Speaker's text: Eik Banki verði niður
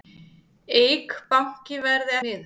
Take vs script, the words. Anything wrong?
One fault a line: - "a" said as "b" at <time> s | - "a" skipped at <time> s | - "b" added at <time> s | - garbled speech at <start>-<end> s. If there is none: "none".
none